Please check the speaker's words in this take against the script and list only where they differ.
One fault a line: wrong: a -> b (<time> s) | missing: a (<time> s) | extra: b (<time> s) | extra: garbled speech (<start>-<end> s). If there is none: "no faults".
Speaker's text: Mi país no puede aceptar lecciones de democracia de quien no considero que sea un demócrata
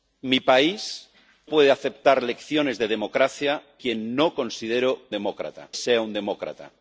missing: no (1.1 s)
missing: de (3.6 s)
wrong: que -> demócrata (5.1 s)